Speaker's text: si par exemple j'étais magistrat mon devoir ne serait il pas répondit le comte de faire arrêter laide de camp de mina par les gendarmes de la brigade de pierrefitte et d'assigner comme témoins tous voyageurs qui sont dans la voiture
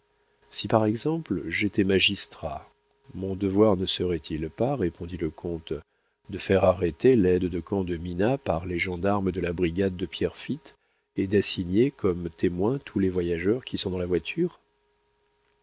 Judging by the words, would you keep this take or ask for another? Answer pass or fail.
fail